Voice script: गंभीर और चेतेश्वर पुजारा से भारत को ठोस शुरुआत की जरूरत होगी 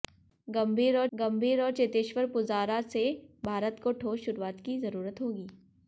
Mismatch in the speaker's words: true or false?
true